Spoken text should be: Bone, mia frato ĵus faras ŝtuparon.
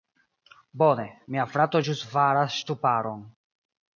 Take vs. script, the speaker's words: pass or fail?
pass